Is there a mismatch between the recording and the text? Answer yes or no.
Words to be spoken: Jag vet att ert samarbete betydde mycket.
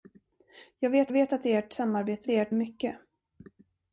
yes